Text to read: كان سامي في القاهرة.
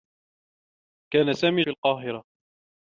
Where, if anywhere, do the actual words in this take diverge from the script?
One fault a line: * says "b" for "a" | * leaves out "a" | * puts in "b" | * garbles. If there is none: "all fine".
all fine